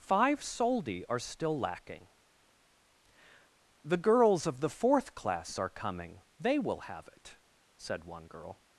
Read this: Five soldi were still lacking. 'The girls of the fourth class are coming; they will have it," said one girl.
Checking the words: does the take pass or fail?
fail